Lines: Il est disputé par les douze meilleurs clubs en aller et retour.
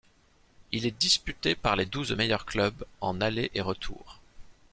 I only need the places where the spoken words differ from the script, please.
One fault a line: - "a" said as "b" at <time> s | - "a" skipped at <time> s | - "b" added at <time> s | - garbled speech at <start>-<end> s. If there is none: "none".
none